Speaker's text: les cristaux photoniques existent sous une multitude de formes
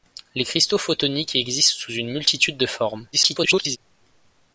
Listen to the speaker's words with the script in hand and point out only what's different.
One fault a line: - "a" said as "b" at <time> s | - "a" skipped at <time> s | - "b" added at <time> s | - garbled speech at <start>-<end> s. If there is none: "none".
- garbled speech at 3.1-3.8 s